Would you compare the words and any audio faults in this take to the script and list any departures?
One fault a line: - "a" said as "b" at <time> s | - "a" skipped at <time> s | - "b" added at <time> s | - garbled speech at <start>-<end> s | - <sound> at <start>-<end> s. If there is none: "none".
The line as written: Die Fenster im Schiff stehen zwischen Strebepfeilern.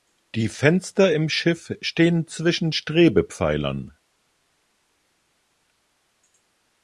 none